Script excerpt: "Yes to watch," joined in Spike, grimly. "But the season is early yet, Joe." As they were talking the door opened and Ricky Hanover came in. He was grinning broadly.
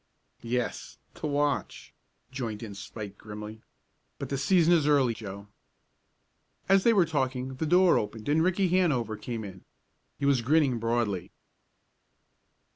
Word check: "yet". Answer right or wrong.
wrong